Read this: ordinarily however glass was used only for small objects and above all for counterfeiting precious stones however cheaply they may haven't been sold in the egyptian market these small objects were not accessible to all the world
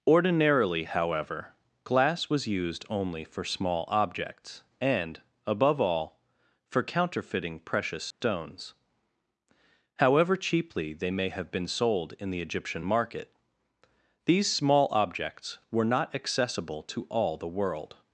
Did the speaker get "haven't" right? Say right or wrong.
wrong